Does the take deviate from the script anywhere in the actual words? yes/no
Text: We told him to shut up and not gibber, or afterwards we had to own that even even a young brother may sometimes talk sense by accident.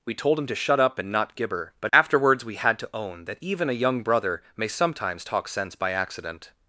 yes